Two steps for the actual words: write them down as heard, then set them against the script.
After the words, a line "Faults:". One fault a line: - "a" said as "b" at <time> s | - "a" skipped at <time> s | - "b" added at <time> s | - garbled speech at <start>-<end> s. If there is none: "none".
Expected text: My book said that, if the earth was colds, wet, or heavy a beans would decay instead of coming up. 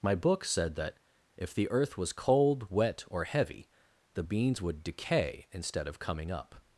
My book said that, if the earth was cold, wet, or heavy the beans would decay instead of coming up.
Faults:
- "colds" said as "cold" at 2.1 s
- "a" said as "the" at 4.1 s